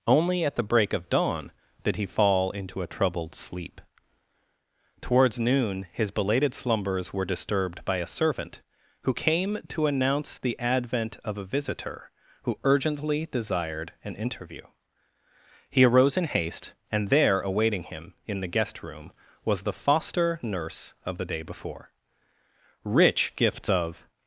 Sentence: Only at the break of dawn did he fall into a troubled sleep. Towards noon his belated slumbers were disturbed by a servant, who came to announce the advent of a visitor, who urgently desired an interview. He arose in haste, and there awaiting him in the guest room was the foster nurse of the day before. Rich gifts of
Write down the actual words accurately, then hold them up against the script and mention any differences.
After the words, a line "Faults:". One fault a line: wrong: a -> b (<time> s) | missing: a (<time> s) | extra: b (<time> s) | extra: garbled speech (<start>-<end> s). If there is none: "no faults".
Only at the break of dawn did he fall into a troubled sleep. Towards noon his belated slumbers were disturbed by a servant, who came to announce the advent of a visitor, who urgently desired an interview. He arose in haste, and there awaiting him in the guest room was the foster nurse of the day before. Rich gifts of
Faults:
no faults